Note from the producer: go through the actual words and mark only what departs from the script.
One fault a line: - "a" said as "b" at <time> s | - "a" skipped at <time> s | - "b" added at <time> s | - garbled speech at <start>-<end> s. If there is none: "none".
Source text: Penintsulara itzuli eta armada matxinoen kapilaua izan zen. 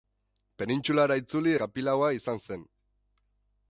- "eta armada matxinoen" skipped at 1.5 s